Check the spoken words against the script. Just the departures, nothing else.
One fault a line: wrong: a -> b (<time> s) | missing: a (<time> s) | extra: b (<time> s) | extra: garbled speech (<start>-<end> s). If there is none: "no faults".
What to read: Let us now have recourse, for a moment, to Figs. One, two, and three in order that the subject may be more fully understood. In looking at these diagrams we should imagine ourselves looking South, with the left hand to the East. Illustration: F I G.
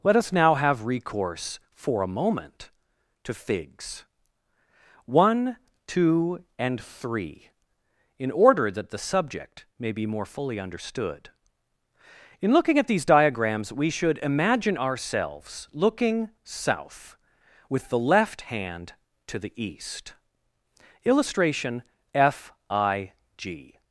no faults